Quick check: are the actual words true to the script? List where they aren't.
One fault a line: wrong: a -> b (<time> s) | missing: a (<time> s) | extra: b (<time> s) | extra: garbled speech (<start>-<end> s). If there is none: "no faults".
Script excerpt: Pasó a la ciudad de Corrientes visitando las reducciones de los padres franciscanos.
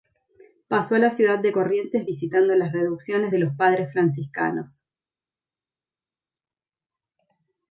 no faults